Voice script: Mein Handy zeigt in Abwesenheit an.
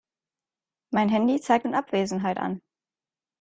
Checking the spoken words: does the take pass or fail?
pass